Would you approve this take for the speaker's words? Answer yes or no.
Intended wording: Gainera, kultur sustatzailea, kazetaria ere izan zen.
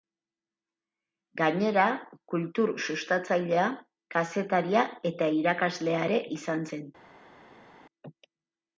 no